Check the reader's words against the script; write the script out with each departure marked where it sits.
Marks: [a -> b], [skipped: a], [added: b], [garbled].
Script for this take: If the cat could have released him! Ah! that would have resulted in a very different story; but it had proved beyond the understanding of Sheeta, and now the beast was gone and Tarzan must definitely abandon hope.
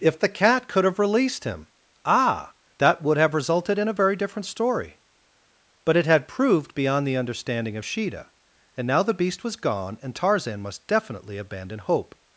If the cat could have released him! Ah! that would have resulted in a very different story; but it had proved beyond the understanding of Sheeta, and now the beast was gone and Tarzan must definitely abandon hope.